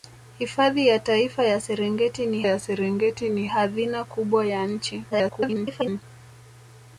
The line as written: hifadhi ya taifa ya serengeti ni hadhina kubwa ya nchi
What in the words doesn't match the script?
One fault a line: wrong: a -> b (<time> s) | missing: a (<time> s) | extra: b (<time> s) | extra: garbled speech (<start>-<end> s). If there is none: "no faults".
extra: ya serengeti ni (2.4 s)
extra: garbled speech (5.1-6.0 s)